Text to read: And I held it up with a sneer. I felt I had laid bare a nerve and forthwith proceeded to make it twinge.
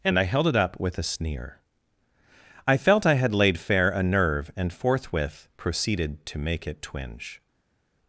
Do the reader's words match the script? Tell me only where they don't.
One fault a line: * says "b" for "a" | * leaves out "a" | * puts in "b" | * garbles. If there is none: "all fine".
* says "fair" for "bare"